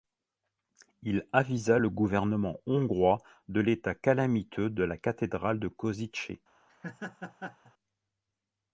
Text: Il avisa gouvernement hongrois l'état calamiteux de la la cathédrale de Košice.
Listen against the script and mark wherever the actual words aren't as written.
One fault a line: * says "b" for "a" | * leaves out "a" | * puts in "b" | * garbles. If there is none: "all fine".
* puts in "le"
* puts in "de"
* leaves out "la"